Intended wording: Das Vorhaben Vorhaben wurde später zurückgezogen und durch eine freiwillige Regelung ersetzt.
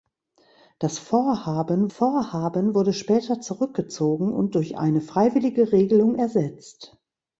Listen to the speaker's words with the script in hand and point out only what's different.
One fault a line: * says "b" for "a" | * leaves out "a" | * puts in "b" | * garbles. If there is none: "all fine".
all fine